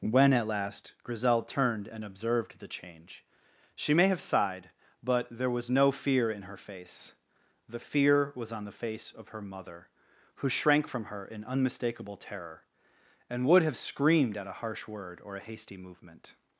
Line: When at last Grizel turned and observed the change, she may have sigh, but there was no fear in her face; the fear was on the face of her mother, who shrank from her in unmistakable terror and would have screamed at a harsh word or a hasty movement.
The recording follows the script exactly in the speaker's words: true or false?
false